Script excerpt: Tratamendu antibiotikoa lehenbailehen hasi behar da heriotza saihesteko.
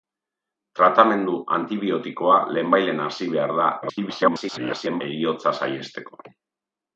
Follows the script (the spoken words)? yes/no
no